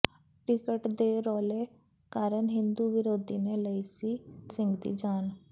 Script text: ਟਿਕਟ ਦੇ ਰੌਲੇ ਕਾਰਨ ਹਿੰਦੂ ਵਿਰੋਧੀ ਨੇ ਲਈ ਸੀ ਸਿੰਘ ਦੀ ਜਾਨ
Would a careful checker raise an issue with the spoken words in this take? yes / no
no